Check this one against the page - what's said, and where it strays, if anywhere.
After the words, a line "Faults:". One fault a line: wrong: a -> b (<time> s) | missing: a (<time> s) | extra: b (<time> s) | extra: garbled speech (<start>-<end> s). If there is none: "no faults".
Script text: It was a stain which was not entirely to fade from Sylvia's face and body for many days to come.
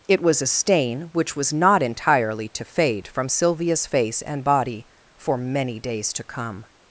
It was a stain which was not entirely to fade from Sylvia's face and body for many days to come.
Faults:
no faults